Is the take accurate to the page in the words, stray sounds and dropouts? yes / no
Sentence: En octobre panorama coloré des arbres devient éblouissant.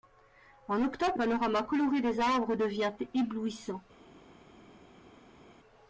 yes